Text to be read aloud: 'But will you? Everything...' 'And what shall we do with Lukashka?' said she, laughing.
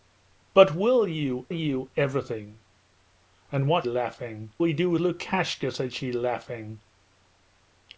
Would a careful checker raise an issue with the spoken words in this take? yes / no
yes